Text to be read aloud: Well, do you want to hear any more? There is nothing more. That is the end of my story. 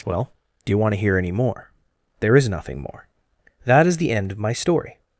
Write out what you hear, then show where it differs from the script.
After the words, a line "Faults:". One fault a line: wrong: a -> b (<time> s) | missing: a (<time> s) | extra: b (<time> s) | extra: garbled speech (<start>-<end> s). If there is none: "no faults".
Well, do you want to hear any more? There is nothing more. That is the end of my story.
Faults:
no faults